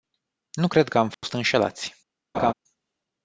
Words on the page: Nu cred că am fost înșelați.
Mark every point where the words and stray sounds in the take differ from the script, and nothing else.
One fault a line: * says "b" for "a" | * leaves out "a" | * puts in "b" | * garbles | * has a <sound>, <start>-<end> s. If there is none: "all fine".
* has a dropout, 1.1-1.2 s
* has a laugh, 2.3-2.5 s